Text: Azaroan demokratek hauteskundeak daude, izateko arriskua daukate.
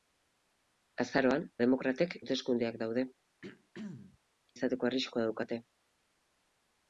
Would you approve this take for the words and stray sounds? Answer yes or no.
no